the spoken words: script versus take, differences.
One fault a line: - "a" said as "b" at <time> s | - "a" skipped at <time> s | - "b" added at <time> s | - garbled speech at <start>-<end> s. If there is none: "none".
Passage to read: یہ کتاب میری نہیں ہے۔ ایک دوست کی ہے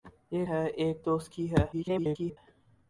- "کتاب میری نہیں" skipped at 0.5 s
- garbled speech at 1.7-2.4 s